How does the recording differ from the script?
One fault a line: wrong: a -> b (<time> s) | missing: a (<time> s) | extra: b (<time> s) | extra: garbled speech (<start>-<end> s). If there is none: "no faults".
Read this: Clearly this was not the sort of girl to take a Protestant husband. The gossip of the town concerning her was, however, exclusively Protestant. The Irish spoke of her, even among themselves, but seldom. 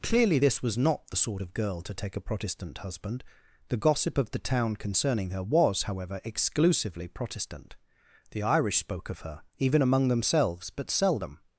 no faults